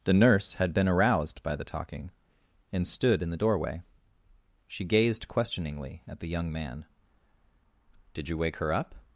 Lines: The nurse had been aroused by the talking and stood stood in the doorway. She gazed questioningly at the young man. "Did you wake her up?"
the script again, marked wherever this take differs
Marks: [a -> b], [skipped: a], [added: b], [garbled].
The nurse had been aroused by the talking and stood [skipped: stood] in the doorway. She gazed questioningly at the young man. "Did you wake her up?"